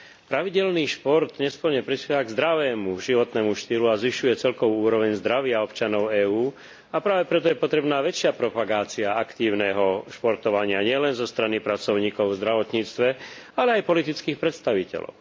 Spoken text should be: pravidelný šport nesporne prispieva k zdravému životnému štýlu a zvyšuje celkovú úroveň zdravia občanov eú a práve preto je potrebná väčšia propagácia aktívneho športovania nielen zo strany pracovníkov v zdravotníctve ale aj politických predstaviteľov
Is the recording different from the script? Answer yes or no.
no